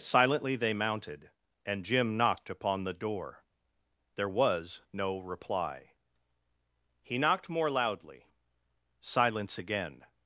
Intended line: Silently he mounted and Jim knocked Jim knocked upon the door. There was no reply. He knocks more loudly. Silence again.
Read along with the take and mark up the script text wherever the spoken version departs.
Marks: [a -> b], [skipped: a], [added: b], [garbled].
Silently [he -> they] mounted and Jim knocked [skipped: Jim knocked] upon the door. There was no reply. He [knocks -> knocked] more loudly. Silence again.